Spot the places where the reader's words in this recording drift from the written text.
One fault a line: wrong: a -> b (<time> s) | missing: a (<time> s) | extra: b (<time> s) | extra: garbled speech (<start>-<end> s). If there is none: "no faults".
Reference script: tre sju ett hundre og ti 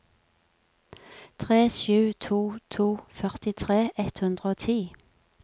extra: to to førtitre (2.3 s)